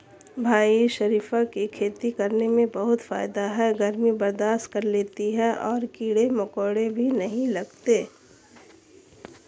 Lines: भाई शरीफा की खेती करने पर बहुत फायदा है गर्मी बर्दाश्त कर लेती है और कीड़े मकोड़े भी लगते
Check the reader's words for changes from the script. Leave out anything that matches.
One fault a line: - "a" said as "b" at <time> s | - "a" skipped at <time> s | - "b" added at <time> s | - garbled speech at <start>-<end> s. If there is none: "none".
- "पर" said as "में" at 2.5 s
- "नहीं" added at 7.1 s